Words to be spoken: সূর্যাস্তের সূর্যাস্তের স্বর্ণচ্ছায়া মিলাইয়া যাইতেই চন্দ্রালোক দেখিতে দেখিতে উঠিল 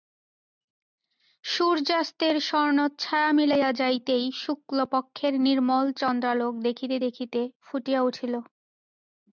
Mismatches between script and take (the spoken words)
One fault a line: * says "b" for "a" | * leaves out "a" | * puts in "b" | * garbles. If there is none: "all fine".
* leaves out "সূর্যাস্তের"
* puts in "শুক্লপক্ষের নির্মল"
* puts in "ফুটিয়া"